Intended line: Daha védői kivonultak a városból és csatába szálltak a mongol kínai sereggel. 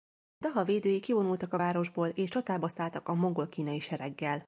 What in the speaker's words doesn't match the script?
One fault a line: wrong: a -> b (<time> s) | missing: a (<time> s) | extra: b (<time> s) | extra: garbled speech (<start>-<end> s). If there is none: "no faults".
no faults